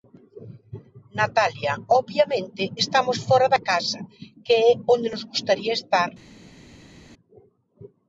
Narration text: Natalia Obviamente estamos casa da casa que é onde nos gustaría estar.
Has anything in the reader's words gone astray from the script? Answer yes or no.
yes